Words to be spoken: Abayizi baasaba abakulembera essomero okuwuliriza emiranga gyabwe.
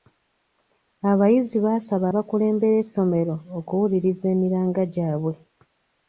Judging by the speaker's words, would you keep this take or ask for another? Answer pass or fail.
pass